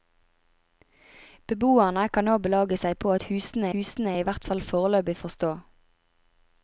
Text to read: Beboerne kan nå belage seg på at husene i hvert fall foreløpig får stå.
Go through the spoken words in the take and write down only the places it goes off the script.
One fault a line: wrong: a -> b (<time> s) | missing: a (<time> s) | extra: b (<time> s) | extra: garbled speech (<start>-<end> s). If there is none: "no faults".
extra: husene (3.8 s)